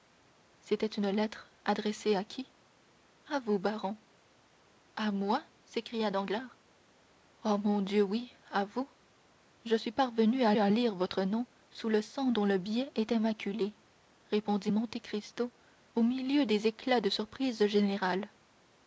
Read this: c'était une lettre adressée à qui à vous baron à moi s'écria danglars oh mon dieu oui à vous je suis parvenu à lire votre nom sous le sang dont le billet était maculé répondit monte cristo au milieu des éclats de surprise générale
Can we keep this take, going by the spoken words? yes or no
no